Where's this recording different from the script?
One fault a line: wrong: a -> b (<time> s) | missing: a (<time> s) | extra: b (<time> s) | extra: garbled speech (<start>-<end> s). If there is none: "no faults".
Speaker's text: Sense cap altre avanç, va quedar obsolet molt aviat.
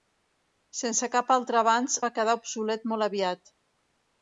no faults